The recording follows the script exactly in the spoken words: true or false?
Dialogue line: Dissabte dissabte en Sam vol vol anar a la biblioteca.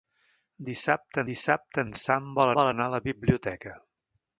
true